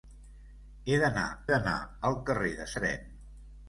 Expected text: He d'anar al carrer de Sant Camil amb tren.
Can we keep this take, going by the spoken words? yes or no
no